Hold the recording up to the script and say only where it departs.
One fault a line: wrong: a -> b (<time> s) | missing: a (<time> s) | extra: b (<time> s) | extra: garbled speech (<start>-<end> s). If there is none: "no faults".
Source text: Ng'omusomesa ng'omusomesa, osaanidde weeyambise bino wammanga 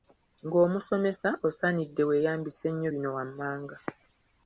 missing: ng'omusomesa (1.3 s)
extra: nnyo (2.7 s)